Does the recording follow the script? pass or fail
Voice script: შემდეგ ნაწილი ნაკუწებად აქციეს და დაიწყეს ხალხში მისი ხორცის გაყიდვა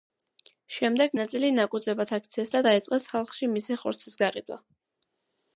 pass